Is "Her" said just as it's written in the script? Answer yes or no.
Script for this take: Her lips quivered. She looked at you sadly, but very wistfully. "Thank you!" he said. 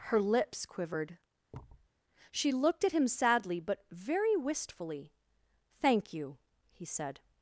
yes